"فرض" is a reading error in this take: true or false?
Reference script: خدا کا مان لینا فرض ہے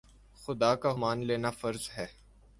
false